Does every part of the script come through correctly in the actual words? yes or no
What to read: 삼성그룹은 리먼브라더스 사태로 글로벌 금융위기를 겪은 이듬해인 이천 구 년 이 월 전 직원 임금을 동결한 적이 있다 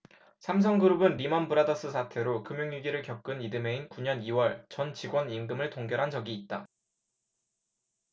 no